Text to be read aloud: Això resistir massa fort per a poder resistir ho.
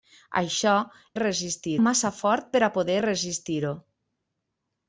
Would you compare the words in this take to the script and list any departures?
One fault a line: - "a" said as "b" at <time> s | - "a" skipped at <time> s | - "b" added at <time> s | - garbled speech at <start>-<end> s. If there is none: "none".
none